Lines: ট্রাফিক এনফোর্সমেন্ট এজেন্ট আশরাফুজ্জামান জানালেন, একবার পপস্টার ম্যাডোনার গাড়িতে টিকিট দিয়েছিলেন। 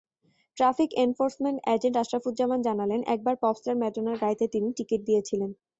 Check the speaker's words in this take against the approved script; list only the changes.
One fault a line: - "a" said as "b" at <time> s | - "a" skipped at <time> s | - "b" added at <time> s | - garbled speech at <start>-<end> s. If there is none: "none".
- "তিনি" added at 4.5 s